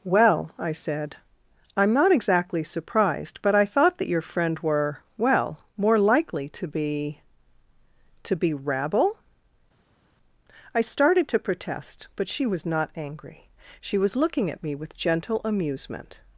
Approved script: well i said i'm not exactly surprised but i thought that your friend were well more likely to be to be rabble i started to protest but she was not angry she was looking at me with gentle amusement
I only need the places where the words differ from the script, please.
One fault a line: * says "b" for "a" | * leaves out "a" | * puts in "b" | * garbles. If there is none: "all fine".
all fine